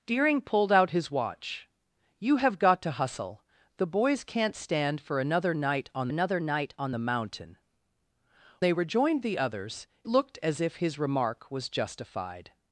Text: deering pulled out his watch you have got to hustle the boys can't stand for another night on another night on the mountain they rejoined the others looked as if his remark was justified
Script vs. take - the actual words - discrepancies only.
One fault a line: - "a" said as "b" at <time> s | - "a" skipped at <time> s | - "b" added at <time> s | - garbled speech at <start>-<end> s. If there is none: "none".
none